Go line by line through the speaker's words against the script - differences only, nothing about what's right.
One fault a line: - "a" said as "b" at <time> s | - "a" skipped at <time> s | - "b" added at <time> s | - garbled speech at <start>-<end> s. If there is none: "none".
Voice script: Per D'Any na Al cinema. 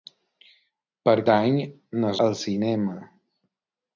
none